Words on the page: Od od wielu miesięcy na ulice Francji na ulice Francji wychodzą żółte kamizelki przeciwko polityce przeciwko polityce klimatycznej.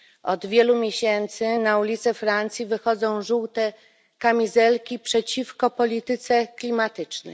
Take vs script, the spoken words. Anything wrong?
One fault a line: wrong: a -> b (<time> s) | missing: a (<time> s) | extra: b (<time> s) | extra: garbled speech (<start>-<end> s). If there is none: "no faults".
missing: od (0.5 s)
missing: na ulice Francji (2.6 s)
missing: przeciwko polityce (6.5 s)